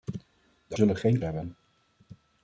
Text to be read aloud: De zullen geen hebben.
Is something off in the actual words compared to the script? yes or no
no